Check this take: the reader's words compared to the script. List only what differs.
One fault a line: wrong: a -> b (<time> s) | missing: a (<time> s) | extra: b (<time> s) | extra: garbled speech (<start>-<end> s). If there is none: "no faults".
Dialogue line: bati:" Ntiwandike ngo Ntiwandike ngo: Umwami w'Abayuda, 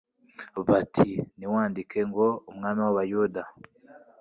missing: Ntiwandike ngo (2.3 s)